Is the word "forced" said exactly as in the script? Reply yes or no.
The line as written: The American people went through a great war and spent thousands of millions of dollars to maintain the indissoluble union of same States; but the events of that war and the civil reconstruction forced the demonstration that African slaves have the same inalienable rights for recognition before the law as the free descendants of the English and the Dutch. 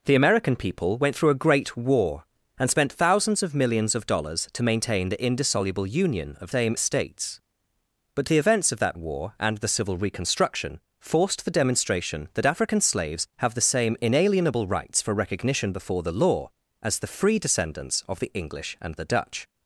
yes